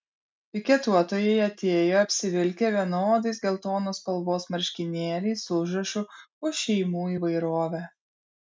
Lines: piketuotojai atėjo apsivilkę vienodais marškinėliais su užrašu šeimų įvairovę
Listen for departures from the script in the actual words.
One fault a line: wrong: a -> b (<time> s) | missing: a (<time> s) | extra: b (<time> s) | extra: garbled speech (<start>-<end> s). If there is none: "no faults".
extra: geltonos spalvos (3.4 s)
extra: už (6.5 s)